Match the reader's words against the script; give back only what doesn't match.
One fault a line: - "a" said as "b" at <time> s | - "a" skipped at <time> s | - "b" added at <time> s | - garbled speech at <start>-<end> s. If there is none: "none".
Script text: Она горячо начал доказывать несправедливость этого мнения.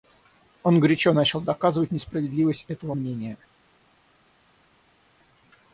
- "Она" said as "Он" at 0.6 s